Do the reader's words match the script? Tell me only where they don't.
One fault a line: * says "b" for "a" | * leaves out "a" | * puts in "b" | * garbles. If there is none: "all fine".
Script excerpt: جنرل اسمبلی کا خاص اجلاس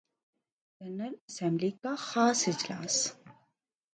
all fine